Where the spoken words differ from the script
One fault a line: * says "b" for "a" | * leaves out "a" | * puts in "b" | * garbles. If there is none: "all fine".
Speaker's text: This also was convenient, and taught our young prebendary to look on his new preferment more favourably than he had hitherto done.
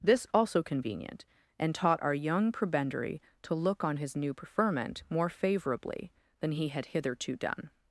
* leaves out "was"